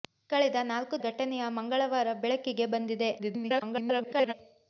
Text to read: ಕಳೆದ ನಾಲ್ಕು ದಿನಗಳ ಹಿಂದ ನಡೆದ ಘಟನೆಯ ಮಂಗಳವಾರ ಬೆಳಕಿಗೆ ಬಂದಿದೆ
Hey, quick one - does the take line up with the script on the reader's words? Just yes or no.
no